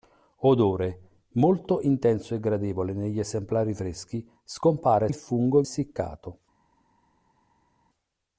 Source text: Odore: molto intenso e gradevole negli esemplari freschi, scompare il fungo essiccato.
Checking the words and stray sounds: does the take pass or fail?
pass